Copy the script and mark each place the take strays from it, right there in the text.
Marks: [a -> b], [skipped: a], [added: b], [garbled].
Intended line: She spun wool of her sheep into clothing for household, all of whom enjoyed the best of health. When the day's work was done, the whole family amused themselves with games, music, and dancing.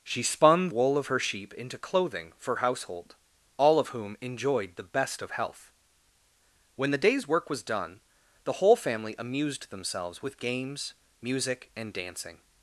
She spun wool of her sheep into clothing for household, all of whom enjoyed the best of health. When the day's work was done, the whole family amused themselves with games, music, and dancing.